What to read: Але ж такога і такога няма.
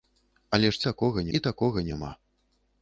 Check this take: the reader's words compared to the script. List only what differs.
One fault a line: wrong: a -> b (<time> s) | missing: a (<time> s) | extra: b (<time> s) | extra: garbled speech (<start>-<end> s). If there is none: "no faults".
no faults